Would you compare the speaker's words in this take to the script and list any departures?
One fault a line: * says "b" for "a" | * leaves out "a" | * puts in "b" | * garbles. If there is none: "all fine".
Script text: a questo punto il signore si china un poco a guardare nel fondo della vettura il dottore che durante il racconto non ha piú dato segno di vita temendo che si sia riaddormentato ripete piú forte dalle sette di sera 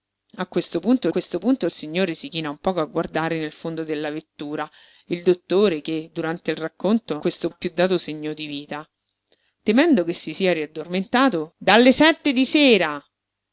* puts in "questo punto"
* says "questo" for "non"
* leaves out "ripete piú forte"